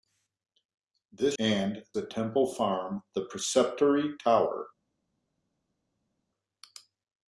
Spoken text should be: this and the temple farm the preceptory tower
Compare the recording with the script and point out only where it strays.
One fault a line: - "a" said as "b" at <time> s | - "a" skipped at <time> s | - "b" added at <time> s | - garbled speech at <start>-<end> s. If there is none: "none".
none